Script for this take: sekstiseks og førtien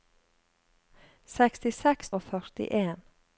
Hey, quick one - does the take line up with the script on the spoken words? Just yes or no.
yes